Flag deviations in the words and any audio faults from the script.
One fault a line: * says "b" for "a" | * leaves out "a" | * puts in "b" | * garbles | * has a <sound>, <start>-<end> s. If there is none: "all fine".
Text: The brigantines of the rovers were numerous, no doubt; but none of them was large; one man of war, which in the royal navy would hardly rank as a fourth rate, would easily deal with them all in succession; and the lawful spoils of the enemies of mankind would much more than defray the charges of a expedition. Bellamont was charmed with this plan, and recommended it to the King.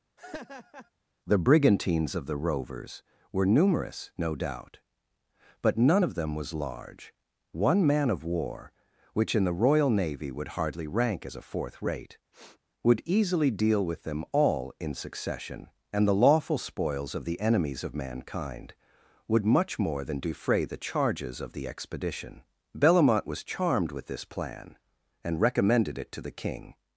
* has a laugh, 0.2-0.9 s
* has a sniff, 12.3-12.6 s
* says "the" for "a"